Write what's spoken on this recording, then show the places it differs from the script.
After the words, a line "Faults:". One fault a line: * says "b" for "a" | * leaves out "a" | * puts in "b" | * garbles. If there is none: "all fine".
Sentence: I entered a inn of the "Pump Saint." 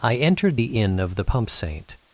I entered the inn of the "Pump Saint."
Faults:
* says "the" for "a"